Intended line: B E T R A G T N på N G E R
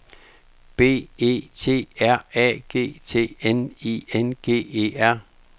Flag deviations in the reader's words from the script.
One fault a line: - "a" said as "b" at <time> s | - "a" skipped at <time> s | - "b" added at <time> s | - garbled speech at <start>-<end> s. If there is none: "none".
- "på" said as "I" at 3.9 s